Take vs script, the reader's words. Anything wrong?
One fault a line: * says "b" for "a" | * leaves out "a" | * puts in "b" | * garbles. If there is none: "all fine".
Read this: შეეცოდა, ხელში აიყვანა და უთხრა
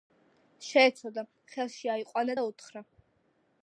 all fine